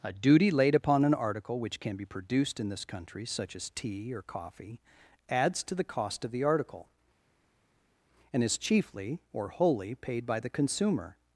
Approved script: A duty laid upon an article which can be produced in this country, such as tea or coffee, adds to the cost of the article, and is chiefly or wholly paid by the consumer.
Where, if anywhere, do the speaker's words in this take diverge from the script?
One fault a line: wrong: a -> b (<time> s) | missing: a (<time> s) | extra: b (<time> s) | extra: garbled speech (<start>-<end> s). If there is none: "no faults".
no faults